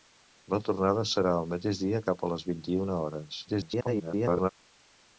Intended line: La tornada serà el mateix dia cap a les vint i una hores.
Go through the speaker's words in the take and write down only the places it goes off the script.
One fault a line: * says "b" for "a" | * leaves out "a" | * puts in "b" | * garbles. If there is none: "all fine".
* garbles